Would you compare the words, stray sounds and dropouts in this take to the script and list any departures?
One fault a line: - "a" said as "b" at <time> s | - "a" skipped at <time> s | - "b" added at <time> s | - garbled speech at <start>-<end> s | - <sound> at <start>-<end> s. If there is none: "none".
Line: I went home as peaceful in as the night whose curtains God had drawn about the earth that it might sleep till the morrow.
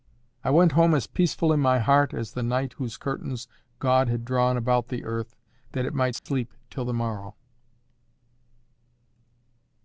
- "my heart" added at 1.6 s
- dropout at 6.2-6.3 s